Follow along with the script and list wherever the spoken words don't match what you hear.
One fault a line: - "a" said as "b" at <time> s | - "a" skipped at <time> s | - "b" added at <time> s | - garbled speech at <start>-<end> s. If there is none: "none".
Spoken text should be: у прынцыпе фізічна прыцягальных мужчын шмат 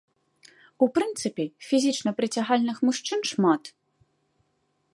none